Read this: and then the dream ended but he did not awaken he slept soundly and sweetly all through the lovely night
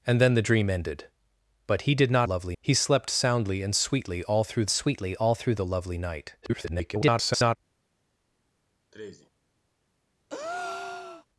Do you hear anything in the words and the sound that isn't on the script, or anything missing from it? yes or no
yes